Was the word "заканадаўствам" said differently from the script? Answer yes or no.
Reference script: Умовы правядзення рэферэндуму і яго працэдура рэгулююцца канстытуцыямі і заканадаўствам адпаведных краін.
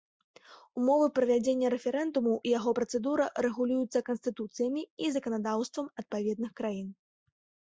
no